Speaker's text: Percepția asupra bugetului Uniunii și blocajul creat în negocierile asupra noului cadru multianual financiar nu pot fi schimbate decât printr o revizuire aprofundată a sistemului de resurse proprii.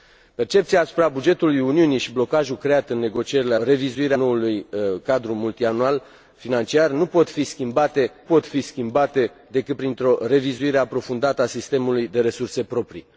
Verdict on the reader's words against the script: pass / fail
fail